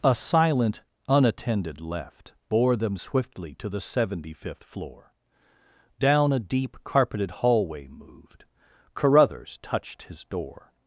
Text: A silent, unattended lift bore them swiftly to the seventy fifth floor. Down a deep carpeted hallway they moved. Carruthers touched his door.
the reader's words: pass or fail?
fail